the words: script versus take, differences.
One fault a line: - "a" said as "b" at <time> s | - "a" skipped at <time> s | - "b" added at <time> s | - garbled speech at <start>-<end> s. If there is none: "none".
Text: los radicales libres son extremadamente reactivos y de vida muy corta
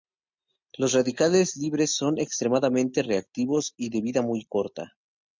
none